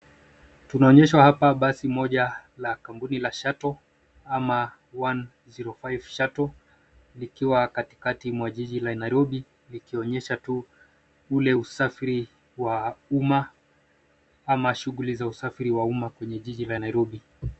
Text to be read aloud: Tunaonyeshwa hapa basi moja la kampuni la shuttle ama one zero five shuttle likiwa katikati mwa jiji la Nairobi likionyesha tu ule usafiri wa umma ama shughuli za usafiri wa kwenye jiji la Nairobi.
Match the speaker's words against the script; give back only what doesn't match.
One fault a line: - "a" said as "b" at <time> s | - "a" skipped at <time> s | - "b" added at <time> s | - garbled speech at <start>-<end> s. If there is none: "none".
- "umma" added at 15.8 s